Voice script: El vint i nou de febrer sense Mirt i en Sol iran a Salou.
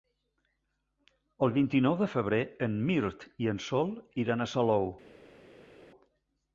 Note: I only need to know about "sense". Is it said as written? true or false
false